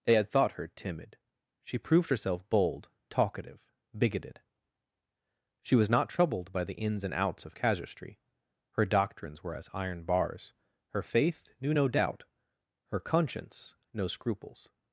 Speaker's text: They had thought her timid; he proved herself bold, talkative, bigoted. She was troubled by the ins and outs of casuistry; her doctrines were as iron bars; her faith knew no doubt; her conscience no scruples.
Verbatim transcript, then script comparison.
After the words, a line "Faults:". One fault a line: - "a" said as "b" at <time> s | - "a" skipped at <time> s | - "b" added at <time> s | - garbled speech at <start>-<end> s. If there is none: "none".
They had thought her timid; she proved herself bold, talkative, bigoted. She was not troubled by the ins and outs of casuistry; her doctrines were as iron bars; her faith knew no doubt; her conscience no scruples.
Faults:
- "he" said as "she" at 1.6 s
- "not" added at 5.9 s